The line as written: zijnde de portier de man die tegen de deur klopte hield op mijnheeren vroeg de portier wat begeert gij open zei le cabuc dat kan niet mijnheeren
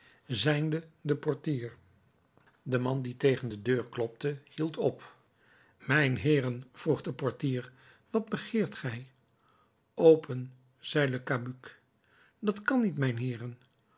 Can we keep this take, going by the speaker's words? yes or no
yes